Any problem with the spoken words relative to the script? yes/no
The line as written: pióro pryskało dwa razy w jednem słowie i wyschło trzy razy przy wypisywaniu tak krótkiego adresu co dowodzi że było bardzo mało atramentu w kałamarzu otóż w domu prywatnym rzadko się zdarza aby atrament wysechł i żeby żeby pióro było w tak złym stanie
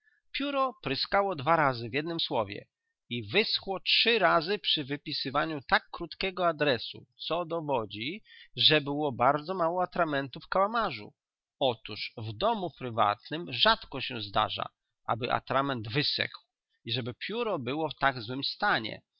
yes